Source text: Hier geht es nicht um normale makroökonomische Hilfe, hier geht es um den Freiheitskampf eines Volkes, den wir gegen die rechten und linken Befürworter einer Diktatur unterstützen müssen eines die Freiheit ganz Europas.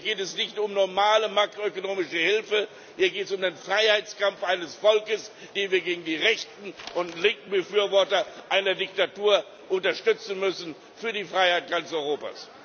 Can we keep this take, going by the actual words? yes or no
no